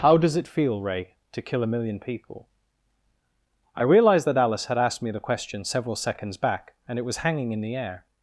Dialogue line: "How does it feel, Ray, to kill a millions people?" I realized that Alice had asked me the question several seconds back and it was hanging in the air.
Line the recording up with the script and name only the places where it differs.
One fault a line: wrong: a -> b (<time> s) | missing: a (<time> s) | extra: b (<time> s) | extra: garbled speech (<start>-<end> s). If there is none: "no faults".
wrong: millions -> million (1.7 s)